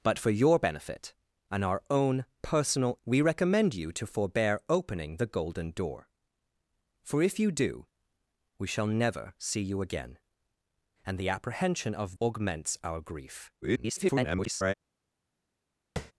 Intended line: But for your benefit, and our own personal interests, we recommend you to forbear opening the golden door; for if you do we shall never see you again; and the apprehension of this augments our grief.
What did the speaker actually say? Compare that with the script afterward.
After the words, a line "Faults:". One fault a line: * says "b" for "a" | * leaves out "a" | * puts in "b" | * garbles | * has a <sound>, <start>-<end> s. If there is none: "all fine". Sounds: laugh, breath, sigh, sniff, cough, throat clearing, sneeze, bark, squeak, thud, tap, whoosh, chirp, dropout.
But for your benefit, and our own personal we recommend you to forbear opening the golden door; for if you do we shall never see you again; and the apprehension of augments our grief. [garbled]
Faults:
* leaves out "interests"
* leaves out "this"
* garbles
* has a tap, 16.0-16.1 s